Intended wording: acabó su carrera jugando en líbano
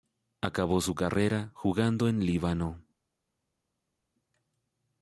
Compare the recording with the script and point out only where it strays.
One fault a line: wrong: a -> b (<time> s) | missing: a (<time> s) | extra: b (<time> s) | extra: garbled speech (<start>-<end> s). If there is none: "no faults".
no faults